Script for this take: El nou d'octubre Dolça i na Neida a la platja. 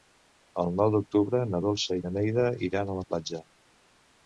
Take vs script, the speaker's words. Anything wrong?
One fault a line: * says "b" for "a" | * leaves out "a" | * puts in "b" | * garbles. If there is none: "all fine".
* puts in "na"
* puts in "iran"